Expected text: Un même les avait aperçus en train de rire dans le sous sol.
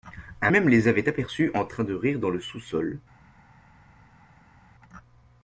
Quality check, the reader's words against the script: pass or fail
pass